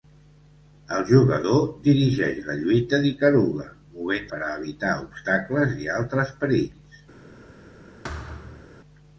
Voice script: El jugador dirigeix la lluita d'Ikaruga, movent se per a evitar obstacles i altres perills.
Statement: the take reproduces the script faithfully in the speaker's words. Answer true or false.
false